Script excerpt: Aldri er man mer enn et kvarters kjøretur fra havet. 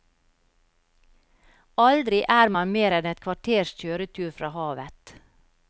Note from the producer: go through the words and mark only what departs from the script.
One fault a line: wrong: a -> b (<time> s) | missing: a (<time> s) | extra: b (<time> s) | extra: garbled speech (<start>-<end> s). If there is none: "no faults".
no faults